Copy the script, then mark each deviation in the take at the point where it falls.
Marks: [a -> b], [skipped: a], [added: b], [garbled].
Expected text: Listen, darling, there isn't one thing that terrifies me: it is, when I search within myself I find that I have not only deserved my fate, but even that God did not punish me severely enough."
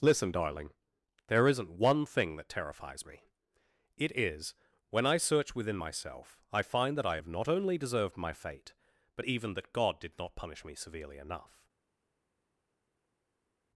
Listen, darling, there isn't one thing that terrifies me: it is, when I search within myself I find that I have not only deserved my fate, but even that God did not punish me severely enough."